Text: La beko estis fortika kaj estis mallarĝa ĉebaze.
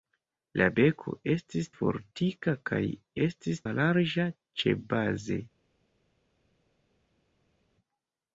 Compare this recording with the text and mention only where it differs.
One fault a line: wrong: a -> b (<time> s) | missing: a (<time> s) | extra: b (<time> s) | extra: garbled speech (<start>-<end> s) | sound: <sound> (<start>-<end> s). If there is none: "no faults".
no faults